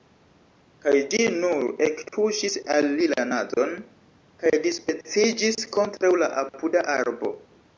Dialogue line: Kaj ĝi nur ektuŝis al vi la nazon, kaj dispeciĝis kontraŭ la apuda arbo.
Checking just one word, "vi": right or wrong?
wrong